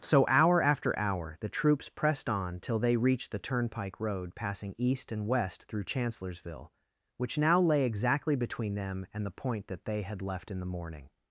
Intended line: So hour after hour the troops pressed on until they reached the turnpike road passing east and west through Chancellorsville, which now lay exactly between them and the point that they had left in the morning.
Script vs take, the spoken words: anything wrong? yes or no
yes